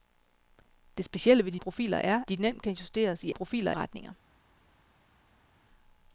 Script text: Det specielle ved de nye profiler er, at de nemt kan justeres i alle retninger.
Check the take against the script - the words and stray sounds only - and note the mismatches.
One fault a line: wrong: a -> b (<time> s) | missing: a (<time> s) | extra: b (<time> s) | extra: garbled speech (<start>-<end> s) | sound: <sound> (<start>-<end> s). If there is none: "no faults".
missing: nye (1.6 s)
missing: at (2.2 s)
wrong: alle -> profiler (3.3 s)